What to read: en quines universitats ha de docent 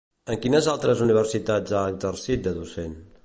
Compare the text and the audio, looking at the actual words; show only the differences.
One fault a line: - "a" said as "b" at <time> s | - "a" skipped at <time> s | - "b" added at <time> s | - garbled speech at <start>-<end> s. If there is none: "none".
- "altres" added at 0.7 s
- "exercit" added at 1.9 s